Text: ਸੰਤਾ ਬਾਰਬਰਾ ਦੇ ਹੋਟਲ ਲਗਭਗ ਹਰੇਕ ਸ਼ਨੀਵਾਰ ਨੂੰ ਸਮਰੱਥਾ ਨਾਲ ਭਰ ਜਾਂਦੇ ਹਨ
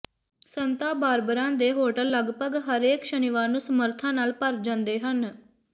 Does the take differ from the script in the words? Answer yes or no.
no